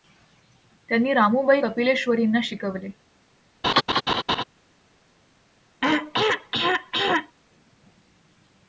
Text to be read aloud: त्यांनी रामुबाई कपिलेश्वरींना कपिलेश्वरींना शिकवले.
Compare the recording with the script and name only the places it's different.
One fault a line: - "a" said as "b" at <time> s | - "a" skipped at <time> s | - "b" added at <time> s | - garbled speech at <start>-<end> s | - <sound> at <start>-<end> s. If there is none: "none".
- "कपिलेश्वरींना" skipped at 2.4 s
- laugh at 3.6-4.4 s
- throat clearing at 5.8-7.4 s